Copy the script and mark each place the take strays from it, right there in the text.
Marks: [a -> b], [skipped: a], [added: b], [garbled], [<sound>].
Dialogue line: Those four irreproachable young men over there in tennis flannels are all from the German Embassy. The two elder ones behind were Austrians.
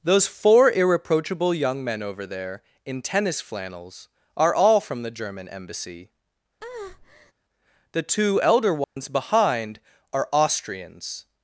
Those four irreproachable young men over there in tennis flannels are all from the German Embassy. [breath] The two elder ones [dropout] behind [were -> are] Austrians.